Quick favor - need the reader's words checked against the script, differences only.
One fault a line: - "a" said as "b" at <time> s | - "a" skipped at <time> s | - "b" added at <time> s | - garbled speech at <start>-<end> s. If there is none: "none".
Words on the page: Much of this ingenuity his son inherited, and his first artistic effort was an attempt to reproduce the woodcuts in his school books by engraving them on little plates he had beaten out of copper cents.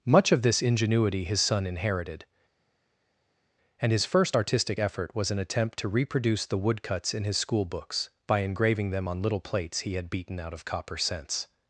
none